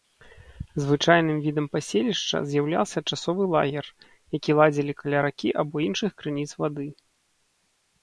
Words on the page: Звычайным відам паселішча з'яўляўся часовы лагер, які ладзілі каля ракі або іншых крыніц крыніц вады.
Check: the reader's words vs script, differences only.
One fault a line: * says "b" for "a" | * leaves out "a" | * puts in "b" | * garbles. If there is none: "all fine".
* leaves out "крыніц"